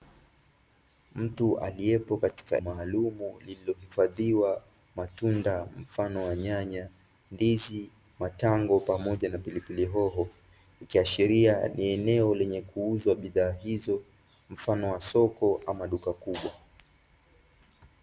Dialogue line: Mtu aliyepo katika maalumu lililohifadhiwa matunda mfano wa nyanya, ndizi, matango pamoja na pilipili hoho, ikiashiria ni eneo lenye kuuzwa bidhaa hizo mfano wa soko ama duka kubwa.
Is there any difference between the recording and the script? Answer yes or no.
no